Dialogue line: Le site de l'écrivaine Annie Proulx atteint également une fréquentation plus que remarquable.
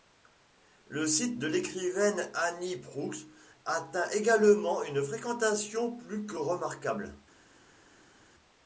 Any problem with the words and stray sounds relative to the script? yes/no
no